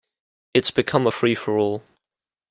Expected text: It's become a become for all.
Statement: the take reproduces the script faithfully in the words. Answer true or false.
false